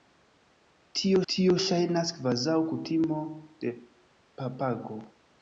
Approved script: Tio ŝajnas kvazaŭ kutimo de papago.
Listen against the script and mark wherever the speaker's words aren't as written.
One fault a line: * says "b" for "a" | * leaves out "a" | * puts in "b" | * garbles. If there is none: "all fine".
* puts in "tio"